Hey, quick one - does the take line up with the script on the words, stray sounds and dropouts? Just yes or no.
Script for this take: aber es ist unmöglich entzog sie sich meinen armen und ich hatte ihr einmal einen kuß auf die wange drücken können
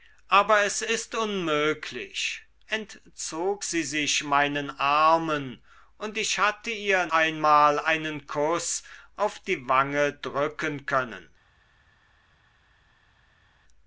yes